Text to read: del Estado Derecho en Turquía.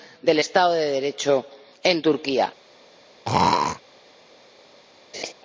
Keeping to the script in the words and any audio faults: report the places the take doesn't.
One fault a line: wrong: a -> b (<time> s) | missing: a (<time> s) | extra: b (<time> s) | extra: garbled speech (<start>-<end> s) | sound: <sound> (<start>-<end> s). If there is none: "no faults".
extra: de (0.7 s)
sound: throat clearing (3.2-3.8 s)
sound: laugh (5.1-5.3 s)